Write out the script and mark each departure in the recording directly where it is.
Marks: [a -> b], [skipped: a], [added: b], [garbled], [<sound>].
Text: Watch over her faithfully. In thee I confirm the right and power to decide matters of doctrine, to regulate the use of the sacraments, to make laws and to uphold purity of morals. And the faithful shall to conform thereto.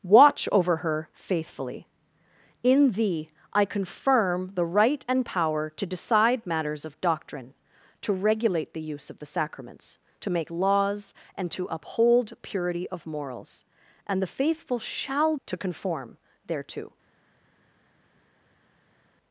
Watch over her faithfully. In thee I confirm the right and power to decide matters of doctrine, to regulate the use of the sacraments, to make laws and to uphold purity of morals. And the faithful shall to conform thereto.